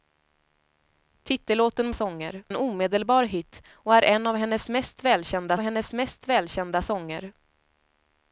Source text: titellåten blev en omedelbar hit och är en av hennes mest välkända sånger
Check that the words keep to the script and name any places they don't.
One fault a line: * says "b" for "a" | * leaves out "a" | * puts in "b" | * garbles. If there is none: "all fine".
* says "sånger" for "blev"
* puts in "hennes mest välkända"